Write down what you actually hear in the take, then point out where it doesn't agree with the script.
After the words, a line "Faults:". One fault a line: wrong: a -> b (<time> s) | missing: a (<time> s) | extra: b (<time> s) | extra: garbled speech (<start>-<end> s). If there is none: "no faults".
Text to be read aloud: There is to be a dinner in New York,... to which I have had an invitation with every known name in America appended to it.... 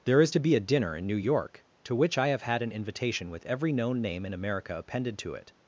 There is to be a dinner in New York,... to which I have had an invitation with every known name in America appended to it....
Faults:
no faults